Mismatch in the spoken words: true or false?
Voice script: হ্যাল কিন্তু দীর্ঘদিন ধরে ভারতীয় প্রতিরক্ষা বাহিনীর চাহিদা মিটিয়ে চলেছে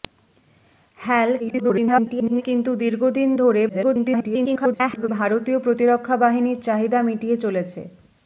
true